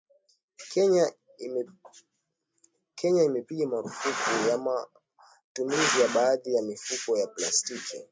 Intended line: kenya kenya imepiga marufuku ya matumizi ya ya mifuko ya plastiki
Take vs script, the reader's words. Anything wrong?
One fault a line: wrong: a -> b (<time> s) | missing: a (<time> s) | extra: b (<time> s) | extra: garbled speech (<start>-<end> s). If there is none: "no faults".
missing: kenya (3.2 s)
extra: baadhi (6.1 s)